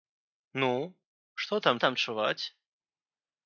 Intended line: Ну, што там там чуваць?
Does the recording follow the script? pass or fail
pass